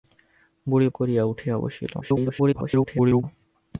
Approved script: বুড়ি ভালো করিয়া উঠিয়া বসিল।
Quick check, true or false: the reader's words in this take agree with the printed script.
false